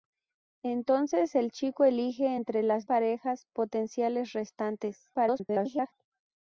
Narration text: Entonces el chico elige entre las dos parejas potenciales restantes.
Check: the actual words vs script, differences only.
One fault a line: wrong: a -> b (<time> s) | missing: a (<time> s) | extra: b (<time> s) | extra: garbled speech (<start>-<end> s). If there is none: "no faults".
missing: dos (2.9 s)
extra: garbled speech (5.1-5.9 s)